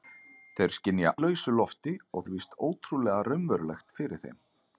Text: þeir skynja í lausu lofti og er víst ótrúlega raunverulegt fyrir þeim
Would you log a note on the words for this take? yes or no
no